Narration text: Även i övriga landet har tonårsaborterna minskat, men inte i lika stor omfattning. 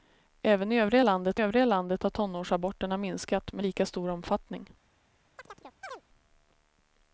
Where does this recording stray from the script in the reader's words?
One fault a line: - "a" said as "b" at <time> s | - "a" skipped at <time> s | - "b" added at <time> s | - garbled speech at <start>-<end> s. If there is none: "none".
- "övriga landet" added at 1.4 s
- "inte" skipped at 3.6 s